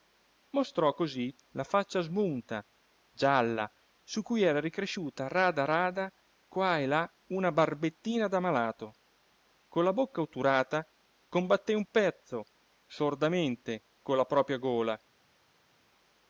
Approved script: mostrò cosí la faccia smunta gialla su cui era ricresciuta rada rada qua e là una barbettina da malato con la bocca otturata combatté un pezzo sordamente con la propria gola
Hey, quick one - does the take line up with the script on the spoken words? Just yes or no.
yes